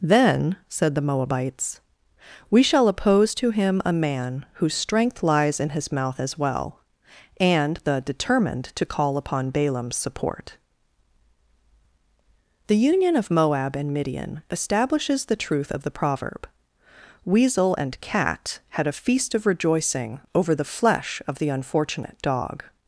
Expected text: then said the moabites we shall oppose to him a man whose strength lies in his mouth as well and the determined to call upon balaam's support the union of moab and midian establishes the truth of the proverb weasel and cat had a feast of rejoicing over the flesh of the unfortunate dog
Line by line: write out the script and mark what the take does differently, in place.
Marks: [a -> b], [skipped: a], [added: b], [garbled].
then said the moabites we shall oppose to him a man whose strength lies in his mouth as well and the determined to call upon balaam's support the union of moab and midian establishes the truth of the proverb weasel and cat had a feast of rejoicing over the flesh of the unfortunate dog